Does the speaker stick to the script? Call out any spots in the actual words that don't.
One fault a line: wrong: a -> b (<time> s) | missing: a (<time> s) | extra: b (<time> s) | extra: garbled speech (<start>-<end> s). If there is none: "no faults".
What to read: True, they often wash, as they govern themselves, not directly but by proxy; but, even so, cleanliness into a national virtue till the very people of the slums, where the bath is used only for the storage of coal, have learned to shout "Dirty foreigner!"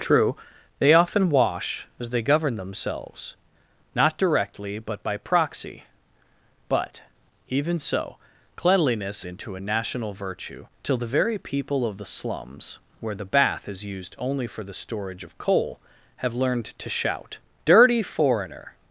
no faults